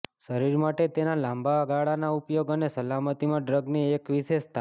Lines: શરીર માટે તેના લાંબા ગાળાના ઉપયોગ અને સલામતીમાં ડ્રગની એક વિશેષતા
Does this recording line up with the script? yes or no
yes